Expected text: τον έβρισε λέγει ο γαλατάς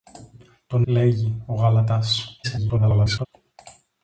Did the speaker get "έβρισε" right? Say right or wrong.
wrong